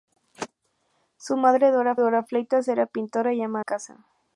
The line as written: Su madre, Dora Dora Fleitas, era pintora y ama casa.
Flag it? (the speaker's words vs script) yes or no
no